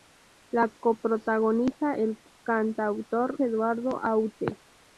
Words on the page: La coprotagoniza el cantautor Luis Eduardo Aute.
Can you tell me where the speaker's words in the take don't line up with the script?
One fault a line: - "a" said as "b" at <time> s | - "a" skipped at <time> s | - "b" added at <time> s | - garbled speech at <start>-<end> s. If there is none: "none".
- "Luis" skipped at 3.4 s